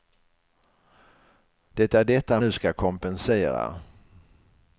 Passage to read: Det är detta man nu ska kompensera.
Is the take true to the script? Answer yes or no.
no